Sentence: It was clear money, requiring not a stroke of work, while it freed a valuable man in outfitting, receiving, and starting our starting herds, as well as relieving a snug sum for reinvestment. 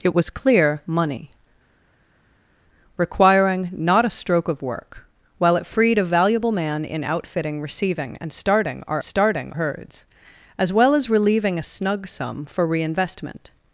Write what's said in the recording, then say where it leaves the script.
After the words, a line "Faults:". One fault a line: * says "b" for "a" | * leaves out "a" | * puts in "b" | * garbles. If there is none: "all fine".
It was clear money, requiring not a stroke of work, while it freed a valuable man in outfitting, receiving, and starting our starting herds, as well as relieving a snug sum for reinvestment.
Faults:
all fine